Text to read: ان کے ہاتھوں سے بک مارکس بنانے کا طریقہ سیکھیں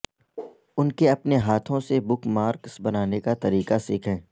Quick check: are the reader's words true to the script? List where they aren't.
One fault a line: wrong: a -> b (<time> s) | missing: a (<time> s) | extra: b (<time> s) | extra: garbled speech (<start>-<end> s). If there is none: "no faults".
extra: اپنے (1.1 s)